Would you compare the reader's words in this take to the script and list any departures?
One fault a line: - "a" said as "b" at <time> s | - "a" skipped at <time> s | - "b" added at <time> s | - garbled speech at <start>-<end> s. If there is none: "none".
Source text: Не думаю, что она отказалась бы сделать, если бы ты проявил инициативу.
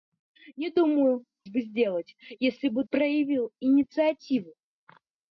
- "что она отказалась" skipped at 1.2 s
- "ты" skipped at 2.8 s